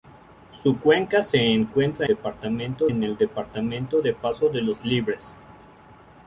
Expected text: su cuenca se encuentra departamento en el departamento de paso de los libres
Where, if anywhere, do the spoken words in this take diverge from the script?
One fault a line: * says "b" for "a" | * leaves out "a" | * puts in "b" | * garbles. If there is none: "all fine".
all fine